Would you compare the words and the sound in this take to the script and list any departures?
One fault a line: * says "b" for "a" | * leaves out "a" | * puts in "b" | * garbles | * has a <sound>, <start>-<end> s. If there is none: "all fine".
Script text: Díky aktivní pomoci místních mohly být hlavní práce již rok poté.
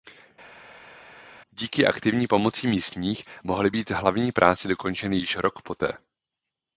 * puts in "dokončeny"